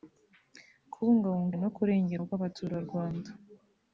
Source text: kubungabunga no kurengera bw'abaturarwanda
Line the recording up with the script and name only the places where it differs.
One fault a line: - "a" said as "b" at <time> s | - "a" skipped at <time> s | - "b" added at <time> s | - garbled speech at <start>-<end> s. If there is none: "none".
none